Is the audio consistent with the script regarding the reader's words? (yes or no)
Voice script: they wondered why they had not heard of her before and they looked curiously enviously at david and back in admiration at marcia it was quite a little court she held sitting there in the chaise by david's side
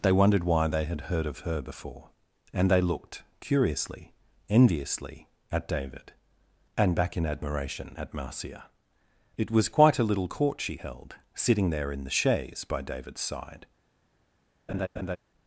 no